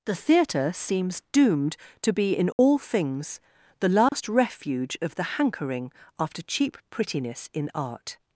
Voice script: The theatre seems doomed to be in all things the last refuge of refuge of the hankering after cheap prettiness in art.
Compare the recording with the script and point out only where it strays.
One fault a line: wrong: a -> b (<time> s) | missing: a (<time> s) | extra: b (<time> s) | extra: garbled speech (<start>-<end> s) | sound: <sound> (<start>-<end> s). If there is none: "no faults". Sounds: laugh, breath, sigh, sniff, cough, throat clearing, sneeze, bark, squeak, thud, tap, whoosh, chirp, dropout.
sound: dropout (2.5-2.6 s)
sound: dropout (4.1-4.1 s)
missing: refuge of (5.1 s)